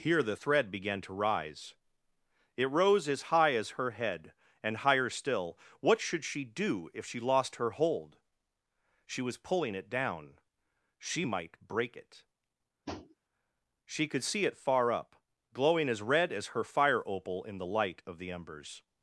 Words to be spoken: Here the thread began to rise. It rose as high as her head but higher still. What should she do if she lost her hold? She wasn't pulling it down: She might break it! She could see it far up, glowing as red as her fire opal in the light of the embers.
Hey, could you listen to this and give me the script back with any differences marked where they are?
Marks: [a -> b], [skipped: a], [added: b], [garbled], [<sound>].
Here the thread began to rise. It rose as high as her head [but -> and] higher still. What should she do if she lost her hold? She [wasn't -> was] pulling it down: She might break it! [tap] She could see it far up, glowing as red as her fire opal in the light of the embers.